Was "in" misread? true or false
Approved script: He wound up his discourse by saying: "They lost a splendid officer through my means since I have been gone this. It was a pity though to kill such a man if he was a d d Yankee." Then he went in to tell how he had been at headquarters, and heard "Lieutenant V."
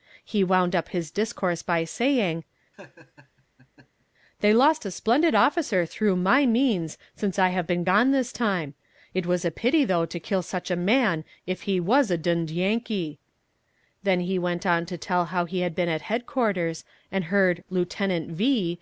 true